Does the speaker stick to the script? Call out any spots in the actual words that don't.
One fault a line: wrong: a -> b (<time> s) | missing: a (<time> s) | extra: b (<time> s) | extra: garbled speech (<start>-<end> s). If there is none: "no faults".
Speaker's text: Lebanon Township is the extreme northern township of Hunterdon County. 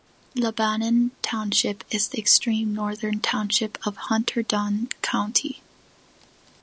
no faults